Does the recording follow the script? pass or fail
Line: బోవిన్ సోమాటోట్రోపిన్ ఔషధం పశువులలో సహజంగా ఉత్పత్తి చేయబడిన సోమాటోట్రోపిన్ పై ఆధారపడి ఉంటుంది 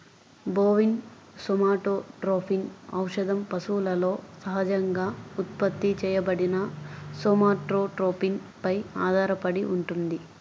pass